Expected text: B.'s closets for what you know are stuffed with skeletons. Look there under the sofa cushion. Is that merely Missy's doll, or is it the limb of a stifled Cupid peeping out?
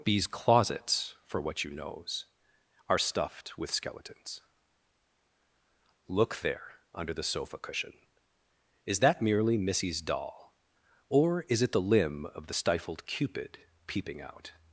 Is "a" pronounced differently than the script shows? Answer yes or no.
yes